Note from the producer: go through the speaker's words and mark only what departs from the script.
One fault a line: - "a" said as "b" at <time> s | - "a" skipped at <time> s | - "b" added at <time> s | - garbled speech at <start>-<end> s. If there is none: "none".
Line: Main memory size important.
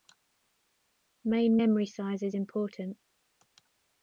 - "is" added at 2.2 s